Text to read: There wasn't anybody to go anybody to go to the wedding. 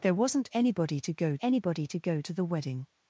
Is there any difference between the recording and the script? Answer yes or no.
no